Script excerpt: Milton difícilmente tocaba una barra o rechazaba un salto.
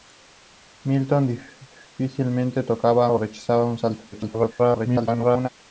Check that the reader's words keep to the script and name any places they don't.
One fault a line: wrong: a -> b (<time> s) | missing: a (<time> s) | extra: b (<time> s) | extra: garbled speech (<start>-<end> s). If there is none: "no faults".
missing: una barra (3.1 s)
extra: garbled speech (4.1-5.5 s)